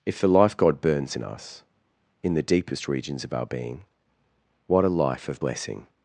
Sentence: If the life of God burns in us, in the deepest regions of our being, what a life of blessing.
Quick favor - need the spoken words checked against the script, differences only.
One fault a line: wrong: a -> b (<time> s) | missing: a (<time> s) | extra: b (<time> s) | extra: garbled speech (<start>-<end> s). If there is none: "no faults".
missing: of (0.6 s)